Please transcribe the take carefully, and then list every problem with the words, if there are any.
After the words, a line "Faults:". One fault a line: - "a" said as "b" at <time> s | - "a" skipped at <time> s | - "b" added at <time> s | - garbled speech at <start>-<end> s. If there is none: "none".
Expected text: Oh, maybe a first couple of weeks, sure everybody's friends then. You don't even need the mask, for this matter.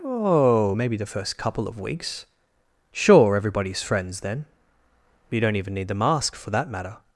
Oh, maybe the first couple of weeks, sure everybody's friends then. You don't even need the mask, for that matter.
Faults:
- "a" said as "the" at 1.0 s
- "this" said as "that" at 6.5 s